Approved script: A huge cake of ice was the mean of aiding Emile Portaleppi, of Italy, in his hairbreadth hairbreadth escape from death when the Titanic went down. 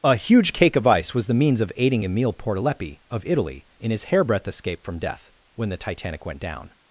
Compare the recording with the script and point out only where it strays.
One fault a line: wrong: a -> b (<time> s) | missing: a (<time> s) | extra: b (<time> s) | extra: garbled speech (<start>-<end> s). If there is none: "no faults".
wrong: mean -> means (1.4 s)
missing: hairbreadth (4.5 s)